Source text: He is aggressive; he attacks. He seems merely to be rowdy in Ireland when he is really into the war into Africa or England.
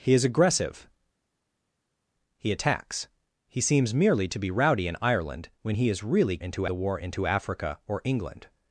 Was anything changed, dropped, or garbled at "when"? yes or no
no